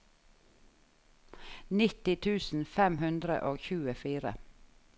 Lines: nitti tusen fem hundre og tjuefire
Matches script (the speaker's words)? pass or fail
pass